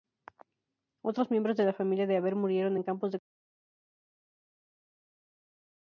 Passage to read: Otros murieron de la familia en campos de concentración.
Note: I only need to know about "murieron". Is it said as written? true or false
false